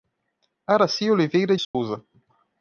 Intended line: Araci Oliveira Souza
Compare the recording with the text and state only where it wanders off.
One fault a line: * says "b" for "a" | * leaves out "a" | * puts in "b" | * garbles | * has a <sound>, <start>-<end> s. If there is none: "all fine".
* has a dropout, 1.6-1.7 s